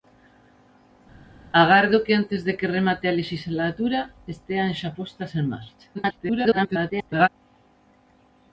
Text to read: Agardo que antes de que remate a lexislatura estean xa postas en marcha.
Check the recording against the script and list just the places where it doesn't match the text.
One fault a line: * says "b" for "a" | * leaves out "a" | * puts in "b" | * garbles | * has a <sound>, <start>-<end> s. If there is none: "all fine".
* garbles